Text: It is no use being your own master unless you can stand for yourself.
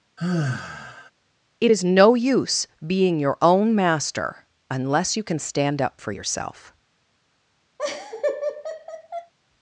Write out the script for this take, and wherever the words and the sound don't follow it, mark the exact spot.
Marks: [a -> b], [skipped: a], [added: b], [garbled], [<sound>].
[sigh] It is no use being your own master unless you can stand [added: up] for yourself. [laugh]